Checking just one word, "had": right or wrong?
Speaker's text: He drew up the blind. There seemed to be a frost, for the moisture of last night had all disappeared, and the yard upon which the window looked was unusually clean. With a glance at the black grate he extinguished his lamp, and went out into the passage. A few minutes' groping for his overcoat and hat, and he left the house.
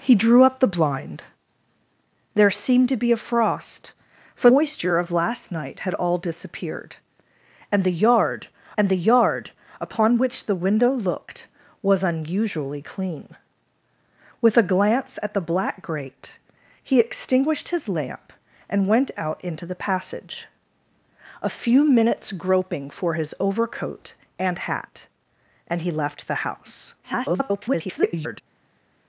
right